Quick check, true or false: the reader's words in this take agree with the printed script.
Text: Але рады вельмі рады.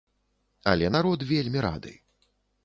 false